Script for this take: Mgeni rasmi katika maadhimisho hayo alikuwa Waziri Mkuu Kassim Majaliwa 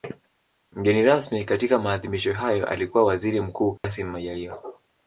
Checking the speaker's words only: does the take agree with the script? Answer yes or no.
yes